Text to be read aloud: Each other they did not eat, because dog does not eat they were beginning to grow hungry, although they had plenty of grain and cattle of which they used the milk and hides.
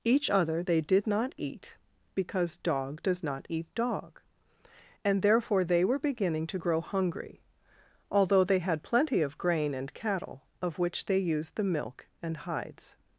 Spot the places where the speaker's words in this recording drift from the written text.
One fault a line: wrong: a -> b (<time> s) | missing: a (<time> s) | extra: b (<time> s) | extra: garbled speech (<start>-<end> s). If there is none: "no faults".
extra: dog and therefore (3.7 s)